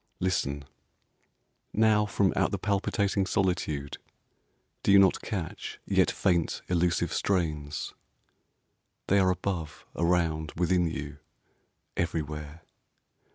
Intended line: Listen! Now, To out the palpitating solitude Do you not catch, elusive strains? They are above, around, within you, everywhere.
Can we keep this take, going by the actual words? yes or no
no